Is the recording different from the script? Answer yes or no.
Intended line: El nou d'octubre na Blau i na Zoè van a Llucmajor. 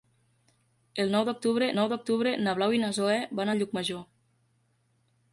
yes